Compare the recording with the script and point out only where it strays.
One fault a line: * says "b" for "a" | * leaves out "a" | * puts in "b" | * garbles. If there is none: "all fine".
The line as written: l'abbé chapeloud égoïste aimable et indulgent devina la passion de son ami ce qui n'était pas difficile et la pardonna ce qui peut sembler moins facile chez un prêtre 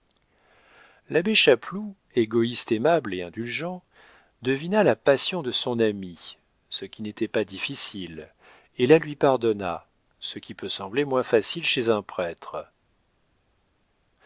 * puts in "lui"